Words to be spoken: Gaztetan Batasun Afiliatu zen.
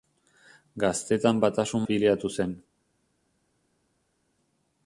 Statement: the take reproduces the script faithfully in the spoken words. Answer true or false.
true